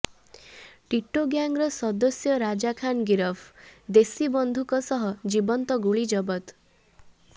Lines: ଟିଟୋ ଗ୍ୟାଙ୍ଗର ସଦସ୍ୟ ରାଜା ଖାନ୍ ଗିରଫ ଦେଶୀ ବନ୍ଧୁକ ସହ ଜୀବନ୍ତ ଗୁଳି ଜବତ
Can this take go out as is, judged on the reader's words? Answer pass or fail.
pass